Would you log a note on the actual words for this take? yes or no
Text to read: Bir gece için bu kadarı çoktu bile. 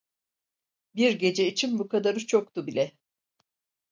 no